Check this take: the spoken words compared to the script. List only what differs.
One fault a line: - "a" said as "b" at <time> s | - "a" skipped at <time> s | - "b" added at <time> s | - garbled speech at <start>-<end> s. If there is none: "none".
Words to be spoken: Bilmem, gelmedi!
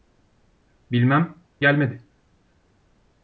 none